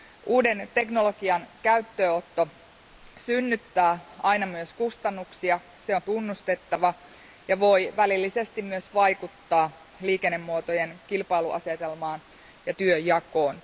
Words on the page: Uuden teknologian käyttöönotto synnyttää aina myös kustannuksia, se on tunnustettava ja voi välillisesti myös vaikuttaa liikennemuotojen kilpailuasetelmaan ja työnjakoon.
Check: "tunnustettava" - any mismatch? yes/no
no